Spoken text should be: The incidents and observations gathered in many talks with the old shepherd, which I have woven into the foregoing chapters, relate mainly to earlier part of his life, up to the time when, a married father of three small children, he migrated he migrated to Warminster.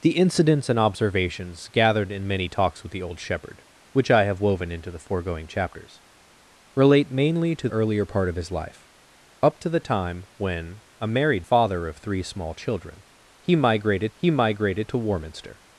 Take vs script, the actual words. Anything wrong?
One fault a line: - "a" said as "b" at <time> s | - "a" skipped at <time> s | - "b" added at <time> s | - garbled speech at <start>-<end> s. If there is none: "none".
none